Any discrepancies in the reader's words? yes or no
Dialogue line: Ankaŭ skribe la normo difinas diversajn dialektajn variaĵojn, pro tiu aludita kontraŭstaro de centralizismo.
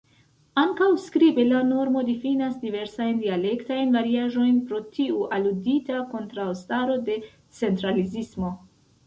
no